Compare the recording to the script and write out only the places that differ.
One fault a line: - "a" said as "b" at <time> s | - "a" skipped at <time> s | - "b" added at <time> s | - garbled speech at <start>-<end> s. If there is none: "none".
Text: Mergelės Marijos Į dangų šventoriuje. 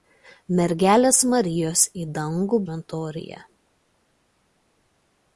none